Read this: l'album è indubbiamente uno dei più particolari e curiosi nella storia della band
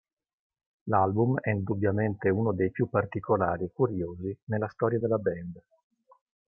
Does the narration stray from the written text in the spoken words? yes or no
no